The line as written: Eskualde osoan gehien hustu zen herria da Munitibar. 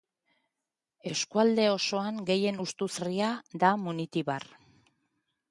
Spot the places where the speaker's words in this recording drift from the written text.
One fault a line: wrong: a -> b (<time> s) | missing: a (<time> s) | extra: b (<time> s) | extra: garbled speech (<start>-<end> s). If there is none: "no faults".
missing: zen (2.9 s)